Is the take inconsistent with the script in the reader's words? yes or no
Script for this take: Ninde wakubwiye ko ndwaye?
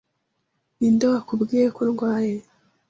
no